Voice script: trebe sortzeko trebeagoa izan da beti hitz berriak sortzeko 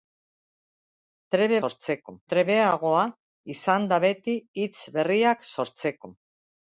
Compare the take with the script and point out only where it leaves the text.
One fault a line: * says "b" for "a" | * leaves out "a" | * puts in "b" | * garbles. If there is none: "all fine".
all fine